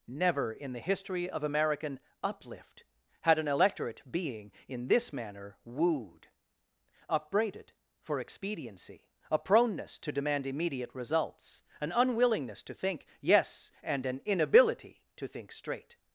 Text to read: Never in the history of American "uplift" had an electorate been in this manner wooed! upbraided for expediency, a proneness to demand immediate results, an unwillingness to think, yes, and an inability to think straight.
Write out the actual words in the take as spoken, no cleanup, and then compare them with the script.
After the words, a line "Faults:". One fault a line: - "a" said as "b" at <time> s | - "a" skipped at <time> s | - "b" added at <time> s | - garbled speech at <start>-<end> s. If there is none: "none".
Never in the history of American "uplift" had an electorate being in this manner wooed! upbraided for expediency, a proneness to demand immediate results, an unwillingness to think, yes, and an inability to think straight.
Faults:
- "been" said as "being" at 4.1 s